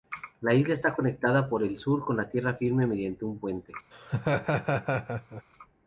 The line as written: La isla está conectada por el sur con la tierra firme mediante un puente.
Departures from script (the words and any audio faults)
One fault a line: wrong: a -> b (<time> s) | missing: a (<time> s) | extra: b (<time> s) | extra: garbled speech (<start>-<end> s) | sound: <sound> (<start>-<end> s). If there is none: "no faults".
sound: laugh (3.9-5.4 s)